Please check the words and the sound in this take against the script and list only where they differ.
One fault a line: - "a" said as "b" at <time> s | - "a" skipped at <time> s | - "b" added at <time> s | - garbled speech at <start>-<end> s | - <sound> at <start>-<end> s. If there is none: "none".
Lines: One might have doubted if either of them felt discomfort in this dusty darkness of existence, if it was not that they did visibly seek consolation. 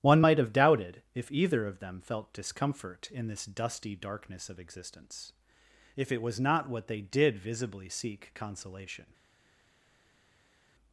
- "that" said as "what" at 6.7 s